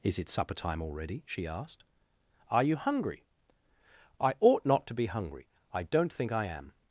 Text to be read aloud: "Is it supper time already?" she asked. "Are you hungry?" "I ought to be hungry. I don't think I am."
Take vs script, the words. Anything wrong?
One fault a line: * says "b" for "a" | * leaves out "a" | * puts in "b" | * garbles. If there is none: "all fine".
* puts in "not"